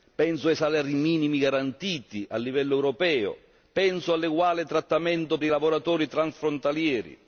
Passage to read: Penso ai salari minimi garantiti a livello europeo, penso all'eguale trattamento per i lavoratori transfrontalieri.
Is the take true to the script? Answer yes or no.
no